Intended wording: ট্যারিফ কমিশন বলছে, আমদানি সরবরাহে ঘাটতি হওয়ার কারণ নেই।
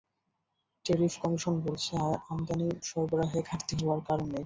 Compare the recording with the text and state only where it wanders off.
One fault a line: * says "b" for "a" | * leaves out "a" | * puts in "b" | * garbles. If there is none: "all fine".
all fine